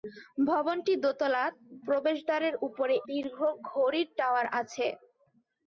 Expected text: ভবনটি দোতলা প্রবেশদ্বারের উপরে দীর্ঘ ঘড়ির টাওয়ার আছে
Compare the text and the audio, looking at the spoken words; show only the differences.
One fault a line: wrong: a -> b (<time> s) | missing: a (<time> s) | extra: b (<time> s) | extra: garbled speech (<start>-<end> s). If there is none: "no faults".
no faults